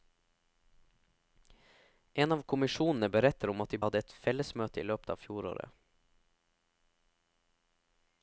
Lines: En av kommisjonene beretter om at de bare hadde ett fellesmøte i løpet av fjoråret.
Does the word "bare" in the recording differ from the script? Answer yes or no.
yes